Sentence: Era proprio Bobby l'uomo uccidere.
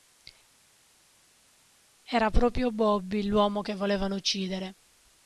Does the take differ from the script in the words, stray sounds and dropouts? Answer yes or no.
yes